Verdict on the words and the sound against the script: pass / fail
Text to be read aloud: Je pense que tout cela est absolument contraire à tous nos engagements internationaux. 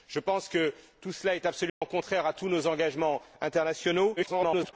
fail